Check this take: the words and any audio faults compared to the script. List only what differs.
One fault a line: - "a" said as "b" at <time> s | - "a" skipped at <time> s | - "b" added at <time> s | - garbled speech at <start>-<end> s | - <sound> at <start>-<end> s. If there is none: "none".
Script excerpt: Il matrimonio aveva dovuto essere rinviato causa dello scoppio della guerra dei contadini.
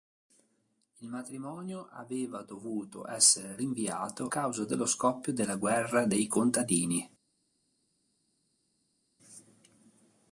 none